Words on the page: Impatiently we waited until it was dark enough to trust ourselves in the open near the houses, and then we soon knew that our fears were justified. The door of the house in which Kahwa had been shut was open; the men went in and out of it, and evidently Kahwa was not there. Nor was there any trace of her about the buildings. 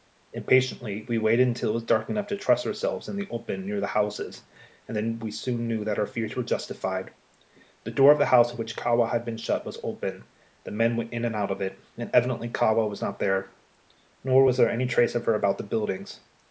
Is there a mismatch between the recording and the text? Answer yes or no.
no